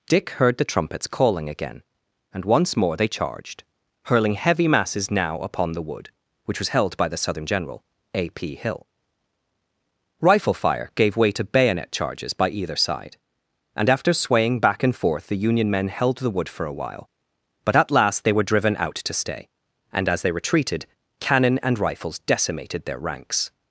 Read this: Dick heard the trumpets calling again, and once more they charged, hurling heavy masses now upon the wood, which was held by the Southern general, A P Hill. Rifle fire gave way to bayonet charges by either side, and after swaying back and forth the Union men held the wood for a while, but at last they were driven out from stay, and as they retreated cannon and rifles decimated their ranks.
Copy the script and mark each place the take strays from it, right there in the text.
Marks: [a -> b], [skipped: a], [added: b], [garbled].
Dick heard the trumpets calling again, and once more they charged, hurling heavy masses now upon the wood, which was held by the Southern general, A P Hill. Rifle fire gave way to bayonet charges by either side, and after swaying back and forth the Union men held the wood for a while, but at last they were driven out [from -> to] stay, and as they retreated cannon and rifles decimated their ranks.